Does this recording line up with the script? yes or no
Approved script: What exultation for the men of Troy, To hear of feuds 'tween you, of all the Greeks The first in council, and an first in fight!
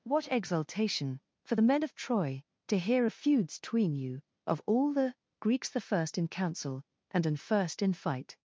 yes